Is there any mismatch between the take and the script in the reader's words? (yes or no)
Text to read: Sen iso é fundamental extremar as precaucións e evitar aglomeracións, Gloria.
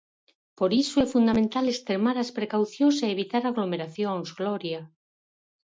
yes